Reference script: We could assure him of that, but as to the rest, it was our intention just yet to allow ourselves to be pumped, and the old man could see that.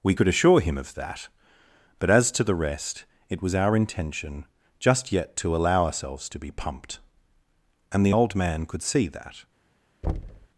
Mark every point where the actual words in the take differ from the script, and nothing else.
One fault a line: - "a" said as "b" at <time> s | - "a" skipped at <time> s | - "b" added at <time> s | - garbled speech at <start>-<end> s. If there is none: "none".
none